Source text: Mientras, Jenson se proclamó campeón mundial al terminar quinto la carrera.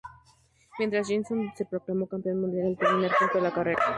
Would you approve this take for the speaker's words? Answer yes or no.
yes